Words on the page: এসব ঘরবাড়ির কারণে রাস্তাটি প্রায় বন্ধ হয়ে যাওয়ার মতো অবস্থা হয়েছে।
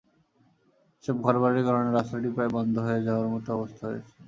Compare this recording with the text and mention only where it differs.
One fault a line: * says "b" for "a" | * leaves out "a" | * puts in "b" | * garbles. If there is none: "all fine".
all fine